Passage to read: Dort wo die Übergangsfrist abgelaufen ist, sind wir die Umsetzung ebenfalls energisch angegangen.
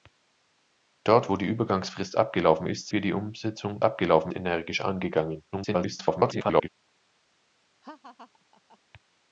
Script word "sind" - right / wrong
wrong